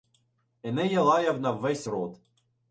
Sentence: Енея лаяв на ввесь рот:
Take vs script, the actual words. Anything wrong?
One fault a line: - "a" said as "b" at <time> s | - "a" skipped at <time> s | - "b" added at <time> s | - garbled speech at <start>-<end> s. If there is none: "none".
none